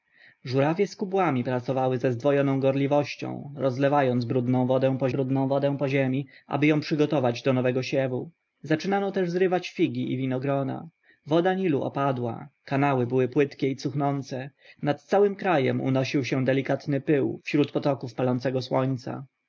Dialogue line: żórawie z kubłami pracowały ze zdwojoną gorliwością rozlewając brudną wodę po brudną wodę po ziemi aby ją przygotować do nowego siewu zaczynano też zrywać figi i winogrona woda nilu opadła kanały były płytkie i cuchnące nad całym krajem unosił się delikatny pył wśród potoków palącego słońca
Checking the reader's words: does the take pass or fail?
pass